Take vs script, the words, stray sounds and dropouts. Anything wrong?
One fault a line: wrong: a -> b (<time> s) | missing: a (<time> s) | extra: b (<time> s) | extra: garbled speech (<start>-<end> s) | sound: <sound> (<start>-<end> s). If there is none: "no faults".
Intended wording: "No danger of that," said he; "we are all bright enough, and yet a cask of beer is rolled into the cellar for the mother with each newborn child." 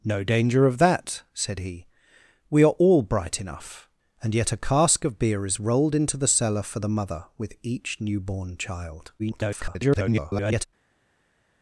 extra: garbled speech (9.2-10.7 s)